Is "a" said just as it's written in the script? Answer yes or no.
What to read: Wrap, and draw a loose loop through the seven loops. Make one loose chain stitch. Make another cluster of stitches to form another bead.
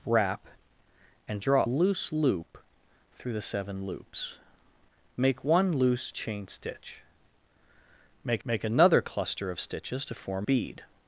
no